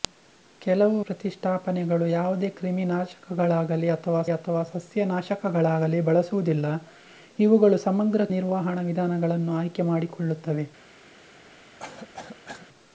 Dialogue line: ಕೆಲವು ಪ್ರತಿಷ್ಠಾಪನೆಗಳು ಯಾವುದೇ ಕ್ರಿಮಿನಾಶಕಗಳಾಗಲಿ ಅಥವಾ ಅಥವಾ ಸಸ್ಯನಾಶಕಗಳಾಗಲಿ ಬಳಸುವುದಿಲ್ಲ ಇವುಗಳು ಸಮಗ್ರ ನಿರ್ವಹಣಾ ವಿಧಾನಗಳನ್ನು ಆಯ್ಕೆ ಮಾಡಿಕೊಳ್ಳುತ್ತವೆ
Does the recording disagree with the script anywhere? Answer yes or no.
no